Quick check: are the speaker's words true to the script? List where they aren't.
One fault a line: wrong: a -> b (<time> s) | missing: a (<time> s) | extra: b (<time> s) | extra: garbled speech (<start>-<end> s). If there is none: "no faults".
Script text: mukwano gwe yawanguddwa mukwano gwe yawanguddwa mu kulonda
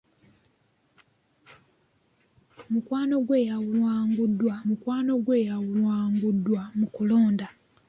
no faults